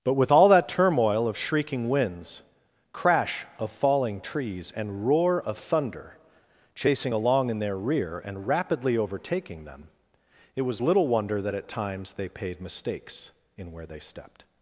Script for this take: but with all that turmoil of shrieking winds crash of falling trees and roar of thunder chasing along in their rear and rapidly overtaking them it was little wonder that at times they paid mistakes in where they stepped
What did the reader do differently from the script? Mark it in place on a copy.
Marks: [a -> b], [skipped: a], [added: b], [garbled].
but with all that turmoil of shrieking winds crash of falling trees and roar of thunder chasing along in their rear and rapidly overtaking them it was little wonder that at times they paid mistakes in where they stepped